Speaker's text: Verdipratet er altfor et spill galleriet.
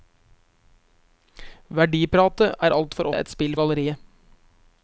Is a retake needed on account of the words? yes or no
no